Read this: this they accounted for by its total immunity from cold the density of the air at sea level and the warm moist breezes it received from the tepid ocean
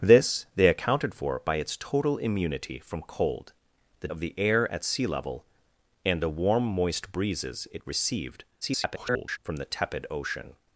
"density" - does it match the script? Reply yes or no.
no